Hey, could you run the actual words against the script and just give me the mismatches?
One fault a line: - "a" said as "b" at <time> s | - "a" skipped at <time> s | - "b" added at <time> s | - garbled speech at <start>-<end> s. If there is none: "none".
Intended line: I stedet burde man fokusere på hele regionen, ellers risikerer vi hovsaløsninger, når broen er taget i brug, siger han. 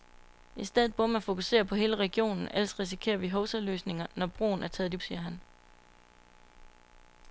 - "brug" skipped at 5.0 s